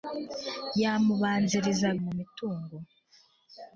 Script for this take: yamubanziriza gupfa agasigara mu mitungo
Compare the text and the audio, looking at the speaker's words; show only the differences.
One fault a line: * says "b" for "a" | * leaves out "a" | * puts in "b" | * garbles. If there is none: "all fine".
* leaves out "gupfa agasigara"